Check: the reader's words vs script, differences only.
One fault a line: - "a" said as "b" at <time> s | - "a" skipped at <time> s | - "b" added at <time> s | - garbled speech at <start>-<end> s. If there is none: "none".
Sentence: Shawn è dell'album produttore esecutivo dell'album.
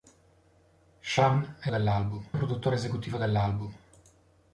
none